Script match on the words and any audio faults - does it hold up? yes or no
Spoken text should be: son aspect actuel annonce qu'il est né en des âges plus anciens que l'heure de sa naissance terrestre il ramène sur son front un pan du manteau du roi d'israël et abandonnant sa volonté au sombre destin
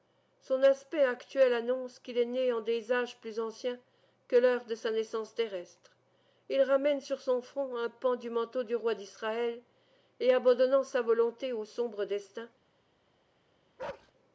no